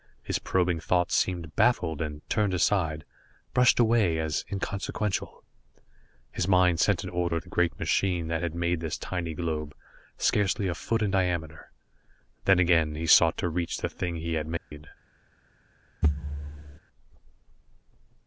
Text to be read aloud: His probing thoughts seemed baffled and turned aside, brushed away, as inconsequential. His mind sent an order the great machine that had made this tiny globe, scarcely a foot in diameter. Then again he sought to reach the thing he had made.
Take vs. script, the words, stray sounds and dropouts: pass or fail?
fail